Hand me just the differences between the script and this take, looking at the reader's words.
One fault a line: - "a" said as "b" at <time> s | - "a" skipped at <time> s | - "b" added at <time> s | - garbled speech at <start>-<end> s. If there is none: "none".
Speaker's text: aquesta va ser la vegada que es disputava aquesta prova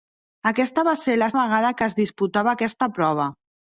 none